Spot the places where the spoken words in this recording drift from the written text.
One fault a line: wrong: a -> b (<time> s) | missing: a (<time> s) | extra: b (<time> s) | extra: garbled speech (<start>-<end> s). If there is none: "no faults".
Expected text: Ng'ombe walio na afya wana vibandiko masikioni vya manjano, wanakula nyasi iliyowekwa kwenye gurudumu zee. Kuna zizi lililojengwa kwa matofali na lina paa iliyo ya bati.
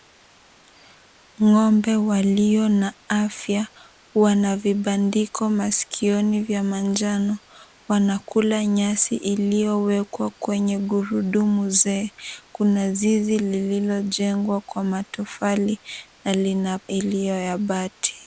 missing: paa (16.8 s)